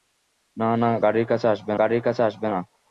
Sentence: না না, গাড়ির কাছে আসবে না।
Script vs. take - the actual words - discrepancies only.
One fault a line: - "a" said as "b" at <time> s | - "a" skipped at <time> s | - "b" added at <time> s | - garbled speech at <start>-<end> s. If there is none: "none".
- "গাড়ির কাছে আসবে" added at 1.8 s